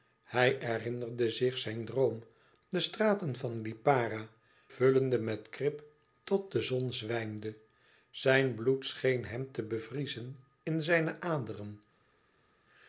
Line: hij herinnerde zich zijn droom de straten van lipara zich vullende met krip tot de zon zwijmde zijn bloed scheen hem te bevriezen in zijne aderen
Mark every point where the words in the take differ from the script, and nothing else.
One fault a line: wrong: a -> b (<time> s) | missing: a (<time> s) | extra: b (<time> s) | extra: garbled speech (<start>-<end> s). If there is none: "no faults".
missing: zich (4.3 s)